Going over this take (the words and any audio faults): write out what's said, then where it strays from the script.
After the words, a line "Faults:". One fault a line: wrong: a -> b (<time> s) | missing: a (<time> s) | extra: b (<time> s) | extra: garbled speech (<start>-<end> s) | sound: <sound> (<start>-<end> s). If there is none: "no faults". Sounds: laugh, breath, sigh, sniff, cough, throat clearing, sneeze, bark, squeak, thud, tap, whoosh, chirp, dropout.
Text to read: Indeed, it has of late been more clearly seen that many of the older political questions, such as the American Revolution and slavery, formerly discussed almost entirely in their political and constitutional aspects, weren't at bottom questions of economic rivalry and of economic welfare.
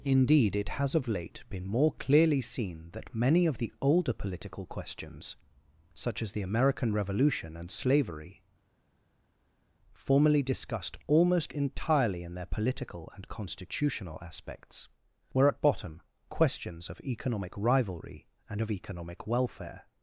Indeed, it has of late been more clearly seen that many of the older political questions, such as the American Revolution and slavery, formerly discussed almost entirely in their political and constitutional aspects, were at bottom questions of economic rivalry and of economic welfare.
Faults:
wrong: weren't -> were (15.3 s)